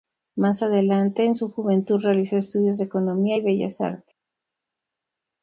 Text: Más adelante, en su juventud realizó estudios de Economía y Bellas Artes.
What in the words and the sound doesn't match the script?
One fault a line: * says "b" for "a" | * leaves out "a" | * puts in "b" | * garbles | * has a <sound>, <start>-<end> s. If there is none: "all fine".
all fine